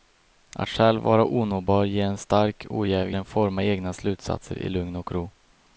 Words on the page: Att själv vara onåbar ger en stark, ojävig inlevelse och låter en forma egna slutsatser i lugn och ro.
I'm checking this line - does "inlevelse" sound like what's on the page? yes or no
no